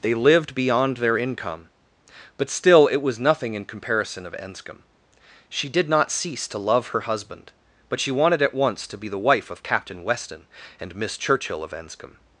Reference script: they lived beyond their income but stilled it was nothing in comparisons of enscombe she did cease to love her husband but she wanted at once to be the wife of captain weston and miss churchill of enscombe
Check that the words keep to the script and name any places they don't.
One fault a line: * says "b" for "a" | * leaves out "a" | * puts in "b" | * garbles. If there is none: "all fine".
* says "still" for "stilled"
* says "comparison" for "comparisons"
* puts in "not"